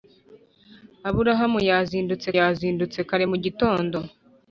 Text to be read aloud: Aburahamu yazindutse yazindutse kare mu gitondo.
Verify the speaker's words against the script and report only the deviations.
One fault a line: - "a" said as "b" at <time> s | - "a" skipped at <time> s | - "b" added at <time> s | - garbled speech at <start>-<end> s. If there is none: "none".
none